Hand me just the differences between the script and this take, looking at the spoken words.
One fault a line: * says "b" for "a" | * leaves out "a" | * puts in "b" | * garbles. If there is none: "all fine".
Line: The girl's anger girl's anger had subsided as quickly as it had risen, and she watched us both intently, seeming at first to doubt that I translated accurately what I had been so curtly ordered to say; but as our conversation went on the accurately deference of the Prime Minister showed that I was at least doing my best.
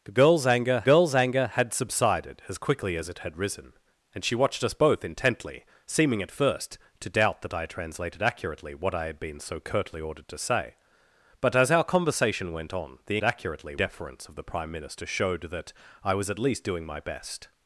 all fine